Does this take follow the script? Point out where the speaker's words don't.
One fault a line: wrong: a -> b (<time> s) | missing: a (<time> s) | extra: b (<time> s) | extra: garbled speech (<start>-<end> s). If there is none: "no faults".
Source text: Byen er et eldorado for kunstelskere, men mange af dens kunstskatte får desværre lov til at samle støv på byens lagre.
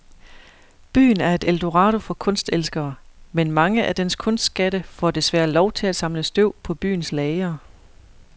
no faults